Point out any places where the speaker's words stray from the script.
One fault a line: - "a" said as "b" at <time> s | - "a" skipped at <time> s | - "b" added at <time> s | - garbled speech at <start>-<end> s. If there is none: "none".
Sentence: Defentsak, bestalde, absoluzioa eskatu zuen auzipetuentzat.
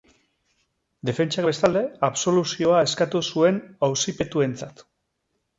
none